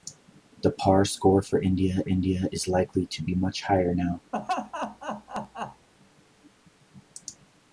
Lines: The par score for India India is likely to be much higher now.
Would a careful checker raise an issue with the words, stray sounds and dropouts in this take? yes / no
yes